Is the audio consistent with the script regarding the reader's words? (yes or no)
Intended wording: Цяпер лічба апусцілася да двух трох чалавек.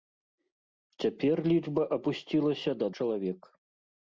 no